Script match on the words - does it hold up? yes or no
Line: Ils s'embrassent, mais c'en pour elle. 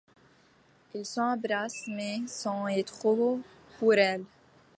no